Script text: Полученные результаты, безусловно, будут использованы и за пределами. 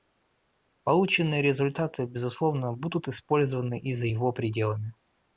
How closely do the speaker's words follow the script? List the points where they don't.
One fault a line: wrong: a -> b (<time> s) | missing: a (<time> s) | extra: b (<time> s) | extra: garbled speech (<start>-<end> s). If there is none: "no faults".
extra: его (4.1 s)